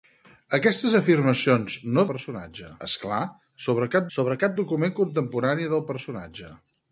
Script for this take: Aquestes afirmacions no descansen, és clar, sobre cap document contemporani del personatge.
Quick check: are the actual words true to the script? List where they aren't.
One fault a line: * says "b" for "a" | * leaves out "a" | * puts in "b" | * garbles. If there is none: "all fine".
* says "personatge" for "descansen"
* puts in "sobre cap"